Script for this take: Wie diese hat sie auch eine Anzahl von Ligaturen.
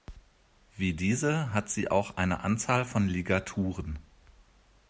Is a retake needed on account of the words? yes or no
no